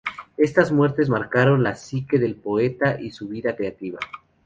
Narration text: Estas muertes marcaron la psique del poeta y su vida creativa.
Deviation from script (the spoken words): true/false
false